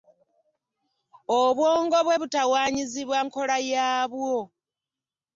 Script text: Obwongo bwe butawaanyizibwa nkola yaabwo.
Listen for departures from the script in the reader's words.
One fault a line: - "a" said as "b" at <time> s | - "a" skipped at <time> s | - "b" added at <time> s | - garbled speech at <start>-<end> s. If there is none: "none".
none